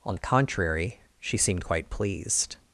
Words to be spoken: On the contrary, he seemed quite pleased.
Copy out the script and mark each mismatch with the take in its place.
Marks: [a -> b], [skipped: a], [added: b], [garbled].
On the contrary, [he -> she] seemed quite pleased.